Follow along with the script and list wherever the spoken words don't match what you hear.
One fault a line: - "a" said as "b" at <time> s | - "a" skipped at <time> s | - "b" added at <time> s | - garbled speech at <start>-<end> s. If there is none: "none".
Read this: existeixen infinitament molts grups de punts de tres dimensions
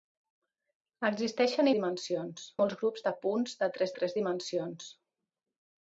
- "infinitament" said as "dimensions" at 1.8 s
- "tres" added at 4.0 s